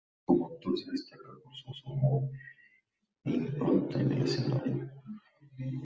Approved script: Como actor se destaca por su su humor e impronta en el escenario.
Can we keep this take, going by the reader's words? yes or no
yes